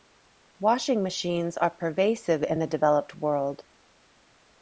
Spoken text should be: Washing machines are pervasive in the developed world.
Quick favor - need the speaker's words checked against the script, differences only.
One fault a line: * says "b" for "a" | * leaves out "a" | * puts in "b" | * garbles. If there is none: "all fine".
all fine